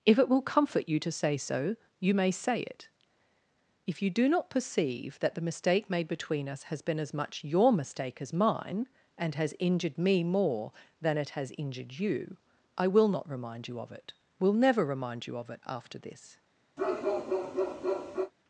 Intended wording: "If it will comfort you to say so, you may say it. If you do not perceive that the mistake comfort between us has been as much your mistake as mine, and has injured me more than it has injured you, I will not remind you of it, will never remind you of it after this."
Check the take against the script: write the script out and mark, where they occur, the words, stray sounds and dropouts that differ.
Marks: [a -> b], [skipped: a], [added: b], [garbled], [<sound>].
"If it will comfort you to say so, you may say it. If you do not perceive that the mistake [comfort -> made] between us has been as much your mistake as mine, and has injured me more than it has injured you, I will not remind you of it, will never remind you of it after this." [bark]